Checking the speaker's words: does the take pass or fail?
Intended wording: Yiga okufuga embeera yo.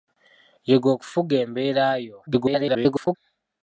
fail